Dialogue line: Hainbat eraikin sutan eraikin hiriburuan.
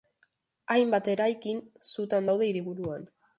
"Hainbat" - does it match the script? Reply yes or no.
yes